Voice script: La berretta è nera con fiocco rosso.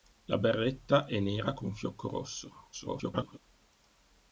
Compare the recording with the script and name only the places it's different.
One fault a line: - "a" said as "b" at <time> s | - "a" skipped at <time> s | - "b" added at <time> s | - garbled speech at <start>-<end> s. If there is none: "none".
- garbled speech at 2.7-3.4 s